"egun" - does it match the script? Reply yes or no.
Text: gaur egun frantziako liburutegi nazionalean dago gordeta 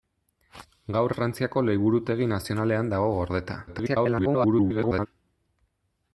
no